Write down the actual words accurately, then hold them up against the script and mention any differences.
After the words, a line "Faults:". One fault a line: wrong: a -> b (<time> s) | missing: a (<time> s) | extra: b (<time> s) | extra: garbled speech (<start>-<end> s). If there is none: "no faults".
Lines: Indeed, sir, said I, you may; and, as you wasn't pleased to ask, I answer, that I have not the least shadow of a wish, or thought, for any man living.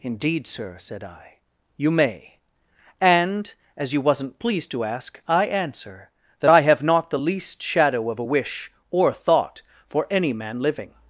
Indeed, sir, said I, you may; and, as you wasn't pleased to ask, I answer, that I have not the least shadow of a wish, or thought, for any man living.
Faults:
no faults